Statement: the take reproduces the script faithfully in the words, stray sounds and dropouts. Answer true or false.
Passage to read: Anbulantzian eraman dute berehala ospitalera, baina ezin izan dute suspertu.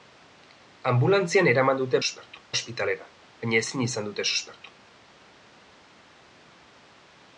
false